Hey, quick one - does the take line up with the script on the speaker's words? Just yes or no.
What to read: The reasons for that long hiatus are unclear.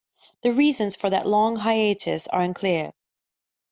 yes